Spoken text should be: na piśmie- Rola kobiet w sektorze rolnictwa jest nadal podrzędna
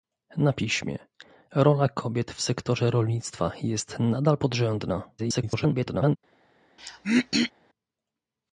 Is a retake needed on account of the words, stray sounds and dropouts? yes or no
yes